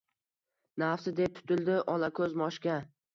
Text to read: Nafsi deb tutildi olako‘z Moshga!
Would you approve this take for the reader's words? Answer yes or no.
yes